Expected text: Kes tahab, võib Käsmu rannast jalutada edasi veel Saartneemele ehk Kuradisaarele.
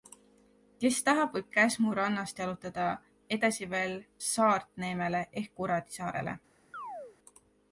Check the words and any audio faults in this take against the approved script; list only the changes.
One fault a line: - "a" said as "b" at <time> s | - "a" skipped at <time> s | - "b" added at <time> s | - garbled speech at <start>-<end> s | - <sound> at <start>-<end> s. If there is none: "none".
- chirp at 6.7-7.2 s